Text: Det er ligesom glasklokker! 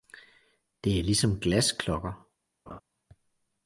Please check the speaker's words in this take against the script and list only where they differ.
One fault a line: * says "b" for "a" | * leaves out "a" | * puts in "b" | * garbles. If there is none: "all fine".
all fine